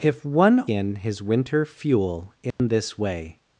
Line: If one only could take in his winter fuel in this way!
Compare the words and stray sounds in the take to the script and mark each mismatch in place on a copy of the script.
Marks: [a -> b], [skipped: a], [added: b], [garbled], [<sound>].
If one [skipped: only could take] in his winter fuel in [dropout] this way!